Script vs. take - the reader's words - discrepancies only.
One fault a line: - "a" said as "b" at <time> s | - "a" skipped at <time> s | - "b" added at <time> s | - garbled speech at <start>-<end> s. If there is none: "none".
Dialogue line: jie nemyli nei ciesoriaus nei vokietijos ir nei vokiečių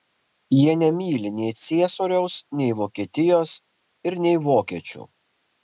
none